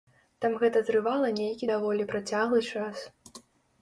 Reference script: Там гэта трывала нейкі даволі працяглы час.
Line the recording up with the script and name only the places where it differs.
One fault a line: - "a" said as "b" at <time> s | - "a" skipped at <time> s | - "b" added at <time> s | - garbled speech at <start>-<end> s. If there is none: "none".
none